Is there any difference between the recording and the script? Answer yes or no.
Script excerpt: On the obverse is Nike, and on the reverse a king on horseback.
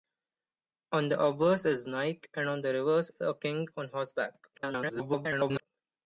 yes